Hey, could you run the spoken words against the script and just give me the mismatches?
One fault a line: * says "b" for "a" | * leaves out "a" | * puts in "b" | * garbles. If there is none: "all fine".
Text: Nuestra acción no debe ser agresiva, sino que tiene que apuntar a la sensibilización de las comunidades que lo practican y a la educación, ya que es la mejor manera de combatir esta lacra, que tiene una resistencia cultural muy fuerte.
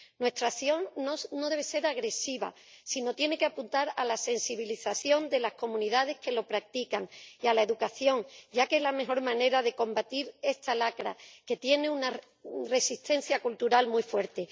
all fine